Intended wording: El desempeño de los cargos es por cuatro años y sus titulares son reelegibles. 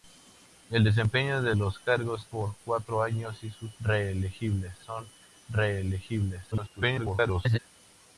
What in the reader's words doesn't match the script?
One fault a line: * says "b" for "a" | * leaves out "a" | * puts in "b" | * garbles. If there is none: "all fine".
* leaves out "es"
* says "reelegibles" for "titulares"
* garbles